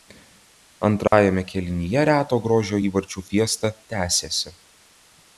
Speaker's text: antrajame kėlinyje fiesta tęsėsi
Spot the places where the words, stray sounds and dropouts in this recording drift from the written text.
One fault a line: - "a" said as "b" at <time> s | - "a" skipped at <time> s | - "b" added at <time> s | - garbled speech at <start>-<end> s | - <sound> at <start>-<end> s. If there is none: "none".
- dropout at 1.1-1.1 s
- "reto grožio įvarčių" added at 2.1 s